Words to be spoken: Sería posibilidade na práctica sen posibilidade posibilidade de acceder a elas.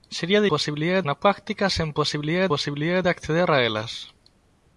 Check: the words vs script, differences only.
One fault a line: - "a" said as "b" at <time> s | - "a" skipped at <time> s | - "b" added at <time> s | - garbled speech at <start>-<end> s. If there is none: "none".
none